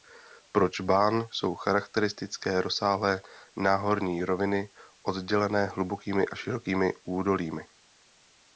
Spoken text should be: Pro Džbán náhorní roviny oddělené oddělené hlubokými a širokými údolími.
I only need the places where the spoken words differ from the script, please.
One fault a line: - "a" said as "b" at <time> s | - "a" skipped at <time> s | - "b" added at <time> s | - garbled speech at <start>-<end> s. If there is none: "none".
- "jsou charakteristické rozsáhlé" added at 1.3 s
- "oddělené" skipped at 5.7 s